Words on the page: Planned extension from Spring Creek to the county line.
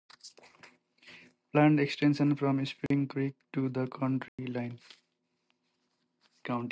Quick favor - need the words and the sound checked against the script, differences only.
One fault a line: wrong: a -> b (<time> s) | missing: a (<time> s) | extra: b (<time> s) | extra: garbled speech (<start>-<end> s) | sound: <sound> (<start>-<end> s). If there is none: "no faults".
sound: dropout (2.9-2.9 s)
sound: dropout (4.3-4.4 s)